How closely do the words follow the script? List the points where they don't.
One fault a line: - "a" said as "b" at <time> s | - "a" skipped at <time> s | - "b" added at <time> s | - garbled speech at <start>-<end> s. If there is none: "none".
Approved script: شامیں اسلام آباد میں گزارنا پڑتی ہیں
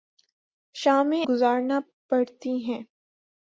- "اسلام آباد میں" skipped at 1.2 s